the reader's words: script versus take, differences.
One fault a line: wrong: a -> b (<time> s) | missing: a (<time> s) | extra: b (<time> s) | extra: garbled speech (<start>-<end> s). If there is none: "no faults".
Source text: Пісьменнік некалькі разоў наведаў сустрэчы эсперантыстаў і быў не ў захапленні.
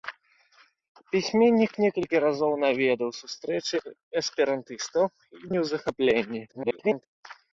missing: быў (5.5 s)
extra: garbled speech (6.5-7.1 s)